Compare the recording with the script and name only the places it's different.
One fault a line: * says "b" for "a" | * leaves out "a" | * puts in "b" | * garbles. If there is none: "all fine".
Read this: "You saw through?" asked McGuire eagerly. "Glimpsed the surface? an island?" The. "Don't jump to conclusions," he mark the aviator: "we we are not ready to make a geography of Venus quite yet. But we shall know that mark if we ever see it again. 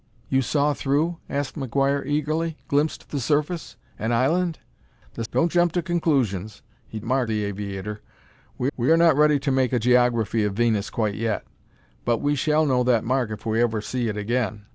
all fine